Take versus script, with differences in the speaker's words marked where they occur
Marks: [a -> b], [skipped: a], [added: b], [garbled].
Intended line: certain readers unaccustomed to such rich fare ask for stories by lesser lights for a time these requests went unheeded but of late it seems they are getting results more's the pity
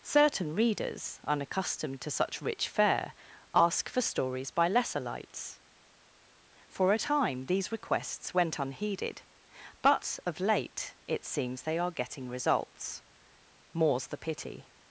certain readers unaccustomed to such rich fare ask for stories by lesser lights for a time these requests went unheeded but of late it seems they are getting results more's the pity